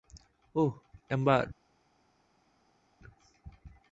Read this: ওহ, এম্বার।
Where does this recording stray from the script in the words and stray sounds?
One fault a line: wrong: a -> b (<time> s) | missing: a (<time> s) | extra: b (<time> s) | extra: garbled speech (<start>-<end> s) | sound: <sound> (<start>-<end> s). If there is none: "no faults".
no faults